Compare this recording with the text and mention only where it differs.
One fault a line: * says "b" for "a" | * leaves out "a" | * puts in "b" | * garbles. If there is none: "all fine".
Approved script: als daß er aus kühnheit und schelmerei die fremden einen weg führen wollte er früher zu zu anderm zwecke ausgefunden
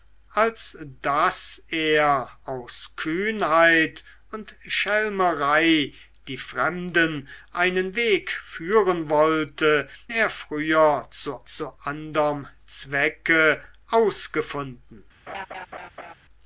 all fine